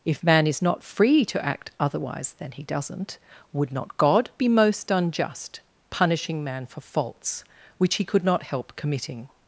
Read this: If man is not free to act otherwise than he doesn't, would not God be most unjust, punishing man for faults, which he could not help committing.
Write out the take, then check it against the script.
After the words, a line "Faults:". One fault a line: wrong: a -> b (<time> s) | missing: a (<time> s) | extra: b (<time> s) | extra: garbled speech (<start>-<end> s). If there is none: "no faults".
If man is not free to act otherwise than he doesn't, would not God be most unjust, punishing man for faults, which he could not help committing.
Faults:
no faults